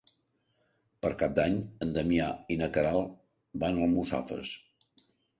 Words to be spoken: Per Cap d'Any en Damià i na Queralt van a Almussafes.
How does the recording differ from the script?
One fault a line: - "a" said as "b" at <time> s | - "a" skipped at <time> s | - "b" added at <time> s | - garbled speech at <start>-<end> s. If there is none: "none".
none